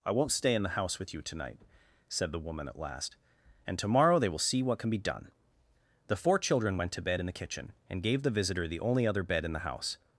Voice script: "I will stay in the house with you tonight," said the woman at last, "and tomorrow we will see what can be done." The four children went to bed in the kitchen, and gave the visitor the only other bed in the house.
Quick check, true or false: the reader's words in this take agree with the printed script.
false